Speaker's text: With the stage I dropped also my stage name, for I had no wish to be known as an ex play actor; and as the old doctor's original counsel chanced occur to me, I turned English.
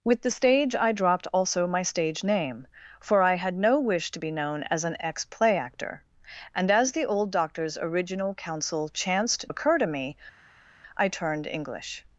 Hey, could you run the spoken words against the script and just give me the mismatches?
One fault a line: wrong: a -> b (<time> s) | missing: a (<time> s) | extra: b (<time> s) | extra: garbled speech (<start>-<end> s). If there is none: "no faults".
no faults